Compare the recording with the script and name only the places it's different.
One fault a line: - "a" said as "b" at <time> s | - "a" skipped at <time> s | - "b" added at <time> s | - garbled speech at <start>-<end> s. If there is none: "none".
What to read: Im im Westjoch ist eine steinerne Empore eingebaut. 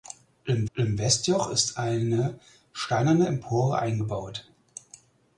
none